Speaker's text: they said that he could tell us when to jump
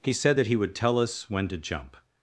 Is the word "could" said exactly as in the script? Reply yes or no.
no